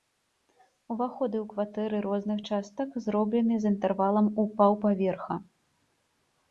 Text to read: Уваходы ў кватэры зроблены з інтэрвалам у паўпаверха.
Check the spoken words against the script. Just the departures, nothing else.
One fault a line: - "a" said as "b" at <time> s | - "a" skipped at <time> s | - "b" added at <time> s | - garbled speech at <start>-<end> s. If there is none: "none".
- "розных частак" added at 2.1 s